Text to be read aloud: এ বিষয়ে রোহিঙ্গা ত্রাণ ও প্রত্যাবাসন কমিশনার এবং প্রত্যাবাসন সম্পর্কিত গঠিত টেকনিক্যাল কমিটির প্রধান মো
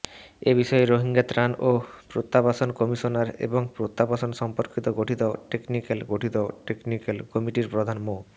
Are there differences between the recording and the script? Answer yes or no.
yes